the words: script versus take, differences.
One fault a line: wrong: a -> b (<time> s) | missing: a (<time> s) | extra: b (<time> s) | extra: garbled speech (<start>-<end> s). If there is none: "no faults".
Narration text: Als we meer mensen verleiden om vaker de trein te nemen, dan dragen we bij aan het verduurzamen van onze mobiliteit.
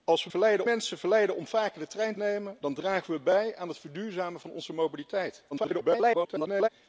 wrong: meer -> verleiden (0.3 s)
missing: te (2.1 s)
extra: garbled speech (5.5-6.7 s)